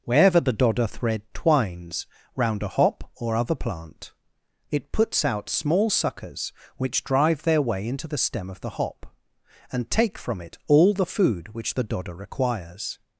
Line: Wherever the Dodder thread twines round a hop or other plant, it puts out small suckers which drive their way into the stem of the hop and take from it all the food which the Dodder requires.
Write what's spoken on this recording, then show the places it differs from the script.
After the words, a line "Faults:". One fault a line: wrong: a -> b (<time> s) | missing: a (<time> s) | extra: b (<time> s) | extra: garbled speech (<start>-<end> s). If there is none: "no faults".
Wherever the Dodder thread twines round a hop or other plant, it puts out small suckers which drive their way into the stem of the hop and take from it all the food which the Dodder requires.
Faults:
no faults